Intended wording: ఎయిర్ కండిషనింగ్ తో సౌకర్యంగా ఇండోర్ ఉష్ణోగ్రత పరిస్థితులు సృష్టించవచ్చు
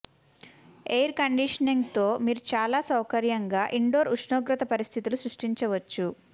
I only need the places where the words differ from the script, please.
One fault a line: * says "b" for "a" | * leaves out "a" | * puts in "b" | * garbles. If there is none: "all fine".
* puts in "మీరు చాలా"